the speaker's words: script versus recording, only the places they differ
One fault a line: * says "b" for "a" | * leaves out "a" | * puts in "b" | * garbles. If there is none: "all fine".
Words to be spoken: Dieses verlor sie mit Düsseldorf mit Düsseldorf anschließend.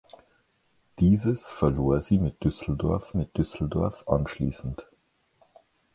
all fine